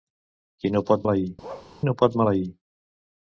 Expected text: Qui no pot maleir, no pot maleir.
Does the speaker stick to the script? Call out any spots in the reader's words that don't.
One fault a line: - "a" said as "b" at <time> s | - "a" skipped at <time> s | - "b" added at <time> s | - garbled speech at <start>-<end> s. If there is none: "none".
none